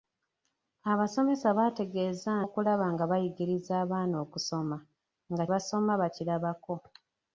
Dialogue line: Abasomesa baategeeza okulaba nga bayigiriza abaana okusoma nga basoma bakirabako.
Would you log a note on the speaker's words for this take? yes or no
no